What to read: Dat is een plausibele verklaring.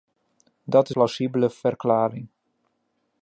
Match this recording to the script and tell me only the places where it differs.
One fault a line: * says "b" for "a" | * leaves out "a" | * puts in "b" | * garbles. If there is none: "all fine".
* leaves out "een"